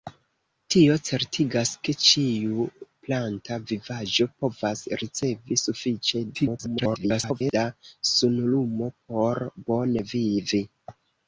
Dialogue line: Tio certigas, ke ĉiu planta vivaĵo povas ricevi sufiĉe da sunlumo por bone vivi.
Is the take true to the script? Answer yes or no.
no